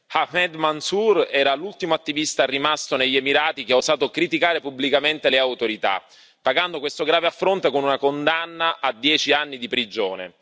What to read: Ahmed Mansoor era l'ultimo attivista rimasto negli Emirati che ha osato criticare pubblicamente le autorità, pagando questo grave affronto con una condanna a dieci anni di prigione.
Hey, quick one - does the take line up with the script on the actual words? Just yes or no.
yes